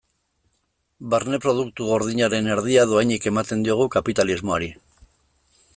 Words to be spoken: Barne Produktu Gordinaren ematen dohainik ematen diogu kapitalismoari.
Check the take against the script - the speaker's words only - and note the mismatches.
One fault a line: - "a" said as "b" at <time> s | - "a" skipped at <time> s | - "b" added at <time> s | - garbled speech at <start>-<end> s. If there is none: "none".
- "ematen" said as "erdia" at 2.6 s